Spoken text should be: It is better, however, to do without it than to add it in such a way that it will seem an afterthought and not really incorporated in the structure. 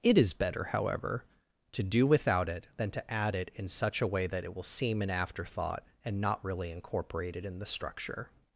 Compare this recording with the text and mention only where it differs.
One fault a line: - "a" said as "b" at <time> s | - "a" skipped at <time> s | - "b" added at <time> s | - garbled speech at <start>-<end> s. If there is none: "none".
none